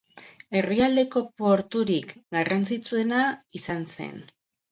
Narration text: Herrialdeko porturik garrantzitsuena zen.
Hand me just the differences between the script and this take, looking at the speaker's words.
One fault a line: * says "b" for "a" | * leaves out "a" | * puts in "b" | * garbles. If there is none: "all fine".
* puts in "izan"